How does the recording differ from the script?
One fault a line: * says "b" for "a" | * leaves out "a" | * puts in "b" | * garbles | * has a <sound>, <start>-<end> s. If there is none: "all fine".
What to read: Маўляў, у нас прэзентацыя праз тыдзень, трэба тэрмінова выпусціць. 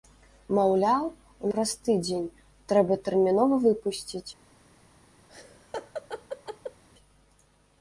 * leaves out "нас прэзентацыя"
* has a laugh, 5.3-6.8 s